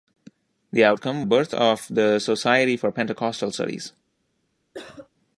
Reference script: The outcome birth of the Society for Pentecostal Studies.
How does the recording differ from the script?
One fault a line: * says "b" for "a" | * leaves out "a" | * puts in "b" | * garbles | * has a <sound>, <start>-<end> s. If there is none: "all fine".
* has a cough, 4.7-5.1 s